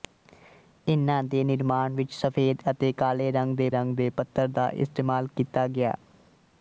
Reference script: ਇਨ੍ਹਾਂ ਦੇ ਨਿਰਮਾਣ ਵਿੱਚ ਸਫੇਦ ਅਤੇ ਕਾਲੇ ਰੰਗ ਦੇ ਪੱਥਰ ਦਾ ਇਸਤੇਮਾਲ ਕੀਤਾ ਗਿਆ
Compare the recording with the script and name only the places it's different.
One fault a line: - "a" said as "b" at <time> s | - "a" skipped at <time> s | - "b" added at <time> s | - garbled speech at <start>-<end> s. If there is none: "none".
- "ਰੰਗ ਦੇ" added at 3.7 s